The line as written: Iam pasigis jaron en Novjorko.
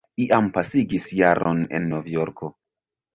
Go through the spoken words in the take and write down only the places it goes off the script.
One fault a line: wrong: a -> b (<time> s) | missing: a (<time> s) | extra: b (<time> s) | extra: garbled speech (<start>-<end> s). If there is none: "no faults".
no faults